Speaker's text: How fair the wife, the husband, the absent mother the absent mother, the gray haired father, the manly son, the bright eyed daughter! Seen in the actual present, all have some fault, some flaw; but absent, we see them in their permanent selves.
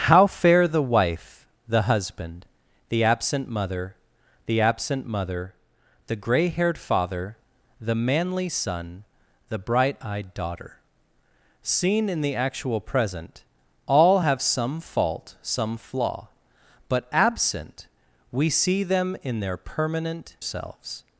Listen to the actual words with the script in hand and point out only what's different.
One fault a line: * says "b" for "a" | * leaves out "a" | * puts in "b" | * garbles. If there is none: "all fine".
all fine